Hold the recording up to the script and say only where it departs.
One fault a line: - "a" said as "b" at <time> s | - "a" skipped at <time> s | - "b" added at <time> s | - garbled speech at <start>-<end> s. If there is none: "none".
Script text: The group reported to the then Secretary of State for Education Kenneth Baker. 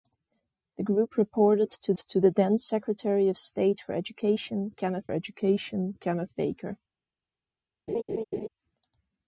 - "to" added at 1.9 s
- "Education Kenneth" added at 5.1 s